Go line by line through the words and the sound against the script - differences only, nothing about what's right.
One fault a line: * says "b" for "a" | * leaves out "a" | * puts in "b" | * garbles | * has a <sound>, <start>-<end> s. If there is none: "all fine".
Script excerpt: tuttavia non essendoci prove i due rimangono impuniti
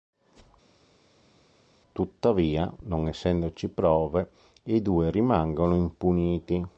all fine